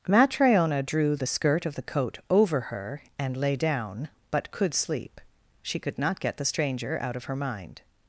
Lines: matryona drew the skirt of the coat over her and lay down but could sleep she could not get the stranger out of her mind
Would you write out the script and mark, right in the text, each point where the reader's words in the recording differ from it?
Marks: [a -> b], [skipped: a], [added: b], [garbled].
matryona drew the skirt of the coat over her and lay down but could sleep she could not get the stranger out of her mind